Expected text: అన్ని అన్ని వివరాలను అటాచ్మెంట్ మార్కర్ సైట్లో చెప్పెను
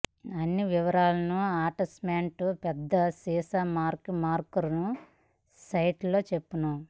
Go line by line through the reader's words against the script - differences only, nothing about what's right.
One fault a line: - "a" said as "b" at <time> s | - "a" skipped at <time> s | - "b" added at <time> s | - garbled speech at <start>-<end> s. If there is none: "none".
- "అన్ని" skipped at 0.6 s
- "పెద్ద సీసా మార్క్" added at 2.6 s